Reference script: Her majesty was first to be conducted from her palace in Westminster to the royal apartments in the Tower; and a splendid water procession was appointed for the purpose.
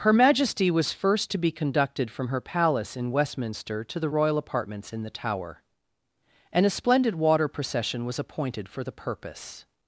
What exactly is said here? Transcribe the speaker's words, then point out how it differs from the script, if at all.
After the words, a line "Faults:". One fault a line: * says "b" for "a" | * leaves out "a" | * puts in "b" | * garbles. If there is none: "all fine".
Her majesty was first to be conducted from her palace in Westminster to the royal apartments in the Tower; and a splendid water procession was appointed for the purpose.
Faults:
all fine